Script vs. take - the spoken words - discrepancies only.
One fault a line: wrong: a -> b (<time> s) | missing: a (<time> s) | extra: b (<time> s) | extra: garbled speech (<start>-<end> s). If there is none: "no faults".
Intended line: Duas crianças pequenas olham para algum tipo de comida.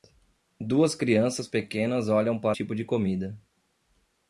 missing: algum (2.6 s)